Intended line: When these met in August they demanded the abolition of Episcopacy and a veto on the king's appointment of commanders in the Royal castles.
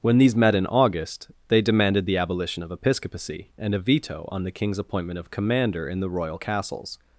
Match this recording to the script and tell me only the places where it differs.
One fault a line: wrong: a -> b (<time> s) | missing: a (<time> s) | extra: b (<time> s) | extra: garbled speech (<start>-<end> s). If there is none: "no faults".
wrong: commanders -> commander (5.3 s)